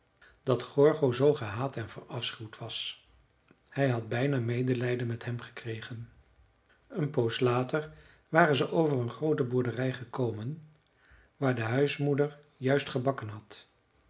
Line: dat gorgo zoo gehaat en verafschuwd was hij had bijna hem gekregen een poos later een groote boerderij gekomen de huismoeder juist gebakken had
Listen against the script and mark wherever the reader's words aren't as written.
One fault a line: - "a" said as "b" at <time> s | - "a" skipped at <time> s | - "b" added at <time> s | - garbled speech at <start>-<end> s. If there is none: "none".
- "medelijden met" added at 4.4 s
- "waren ze over" added at 8.3 s
- "waar" added at 11.4 s